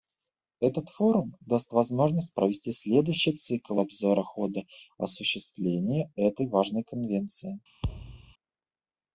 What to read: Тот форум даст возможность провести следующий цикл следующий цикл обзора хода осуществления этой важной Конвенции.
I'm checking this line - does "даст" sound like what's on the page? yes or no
yes